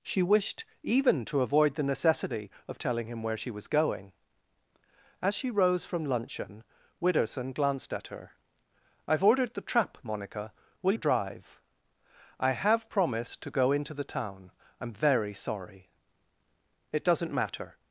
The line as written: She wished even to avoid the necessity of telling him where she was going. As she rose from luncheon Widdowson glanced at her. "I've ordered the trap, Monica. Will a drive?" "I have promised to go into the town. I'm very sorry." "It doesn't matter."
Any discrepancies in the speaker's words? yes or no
no